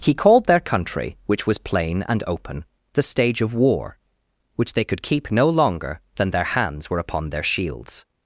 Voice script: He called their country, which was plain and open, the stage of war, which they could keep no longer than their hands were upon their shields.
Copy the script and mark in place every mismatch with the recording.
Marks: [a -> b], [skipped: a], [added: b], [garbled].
He called their country, which was plain and open, the stage of war, which they could keep no longer than their hands were upon their shields.